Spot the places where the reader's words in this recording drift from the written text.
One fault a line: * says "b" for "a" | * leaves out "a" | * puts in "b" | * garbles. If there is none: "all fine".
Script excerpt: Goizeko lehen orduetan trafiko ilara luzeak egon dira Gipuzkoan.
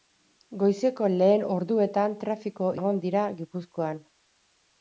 * leaves out "ilara luzeak"